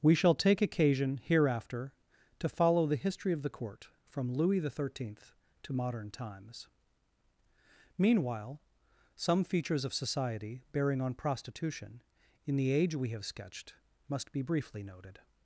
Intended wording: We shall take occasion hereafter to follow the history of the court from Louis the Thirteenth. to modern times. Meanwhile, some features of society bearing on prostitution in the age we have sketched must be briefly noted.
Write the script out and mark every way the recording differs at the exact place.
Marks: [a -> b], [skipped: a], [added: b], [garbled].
We shall take occasion hereafter to follow the history of the court from Louis the Thirteenth. to modern times. Meanwhile, some features of society bearing on prostitution in the age we have sketched must be briefly noted.